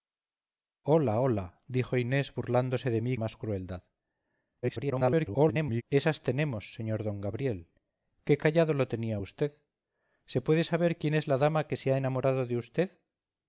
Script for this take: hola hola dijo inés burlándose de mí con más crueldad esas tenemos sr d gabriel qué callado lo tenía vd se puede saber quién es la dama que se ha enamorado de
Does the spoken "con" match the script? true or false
false